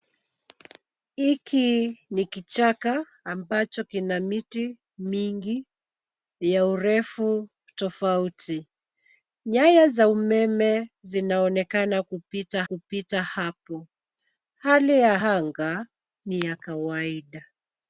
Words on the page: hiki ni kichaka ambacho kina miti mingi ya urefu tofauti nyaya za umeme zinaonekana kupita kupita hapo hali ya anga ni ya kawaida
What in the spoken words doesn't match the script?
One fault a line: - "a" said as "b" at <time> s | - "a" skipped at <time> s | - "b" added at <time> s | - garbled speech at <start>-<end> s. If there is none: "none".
none